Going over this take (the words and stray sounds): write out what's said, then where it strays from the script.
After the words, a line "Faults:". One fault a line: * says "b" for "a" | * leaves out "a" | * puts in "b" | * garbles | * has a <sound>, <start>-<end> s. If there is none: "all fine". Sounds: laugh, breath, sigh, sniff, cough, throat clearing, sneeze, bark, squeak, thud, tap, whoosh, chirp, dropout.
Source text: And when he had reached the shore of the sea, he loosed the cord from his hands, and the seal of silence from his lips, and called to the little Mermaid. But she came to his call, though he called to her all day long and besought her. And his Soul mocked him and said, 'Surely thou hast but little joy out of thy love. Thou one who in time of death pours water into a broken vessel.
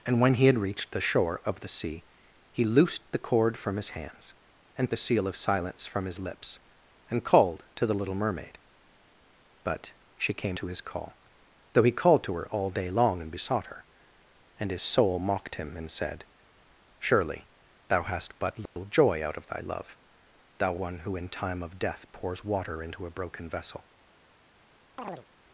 And when he had reached the shore of the sea, he loosed the cord from his hands, and the seal of silence from his lips, and called to the little Mermaid. But she came to his call, though he called to her all day long and besought her. And his Soul mocked him and said, 'Surely thou hast but little joy out of thy love. Thou one who in time of death pours water into a broken vessel.
Faults:
* has a dropout, 18.7-18.8 s
* has a chirp, 25.0-25.3 s